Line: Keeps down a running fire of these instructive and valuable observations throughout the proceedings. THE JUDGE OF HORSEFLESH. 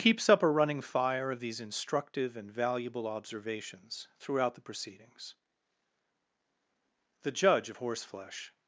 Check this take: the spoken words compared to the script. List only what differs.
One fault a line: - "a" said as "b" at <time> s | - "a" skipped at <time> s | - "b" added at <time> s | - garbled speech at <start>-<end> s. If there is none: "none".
- "down" said as "up" at 0.3 s